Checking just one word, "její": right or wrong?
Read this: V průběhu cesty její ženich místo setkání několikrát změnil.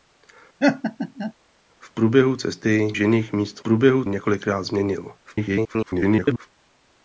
wrong